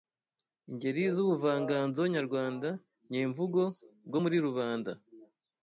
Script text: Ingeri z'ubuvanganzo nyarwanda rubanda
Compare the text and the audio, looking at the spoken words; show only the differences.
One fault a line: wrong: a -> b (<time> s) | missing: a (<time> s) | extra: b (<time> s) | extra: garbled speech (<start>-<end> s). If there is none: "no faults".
extra: nyemvugo bwo muri (3.1 s)